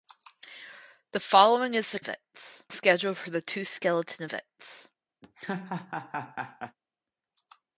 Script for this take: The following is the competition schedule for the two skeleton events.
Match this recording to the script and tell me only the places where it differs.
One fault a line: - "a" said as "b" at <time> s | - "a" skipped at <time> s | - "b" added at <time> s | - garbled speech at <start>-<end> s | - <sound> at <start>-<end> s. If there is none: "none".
- "competition" said as "events" at 2.0 s
- laugh at 5.2-6.8 s